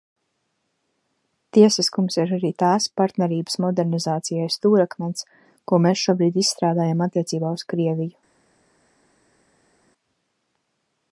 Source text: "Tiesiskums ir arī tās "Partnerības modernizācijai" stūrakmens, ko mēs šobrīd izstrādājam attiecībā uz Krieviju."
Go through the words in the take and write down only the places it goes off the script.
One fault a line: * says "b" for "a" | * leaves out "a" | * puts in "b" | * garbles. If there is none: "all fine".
all fine